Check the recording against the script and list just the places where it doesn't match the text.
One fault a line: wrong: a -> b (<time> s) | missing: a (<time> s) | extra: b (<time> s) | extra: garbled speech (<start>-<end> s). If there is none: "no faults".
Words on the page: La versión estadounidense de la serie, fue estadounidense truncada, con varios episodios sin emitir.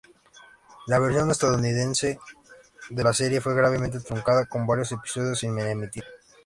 wrong: estadounidense -> gravemente (3.5 s)